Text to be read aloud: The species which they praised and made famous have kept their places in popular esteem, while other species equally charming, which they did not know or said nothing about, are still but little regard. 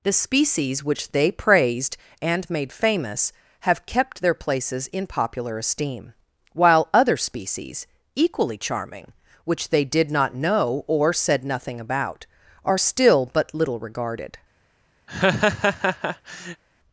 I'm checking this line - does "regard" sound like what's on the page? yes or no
no